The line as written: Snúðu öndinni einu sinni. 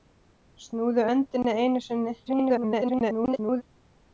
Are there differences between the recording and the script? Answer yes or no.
yes